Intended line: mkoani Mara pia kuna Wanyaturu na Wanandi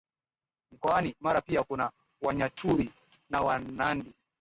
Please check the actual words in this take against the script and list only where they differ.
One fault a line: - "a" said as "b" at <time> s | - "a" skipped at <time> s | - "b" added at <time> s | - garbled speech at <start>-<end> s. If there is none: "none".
none